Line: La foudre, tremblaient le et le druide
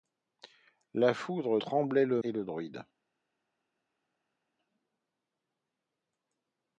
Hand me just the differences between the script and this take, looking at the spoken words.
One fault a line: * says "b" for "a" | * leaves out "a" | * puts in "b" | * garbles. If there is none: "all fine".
all fine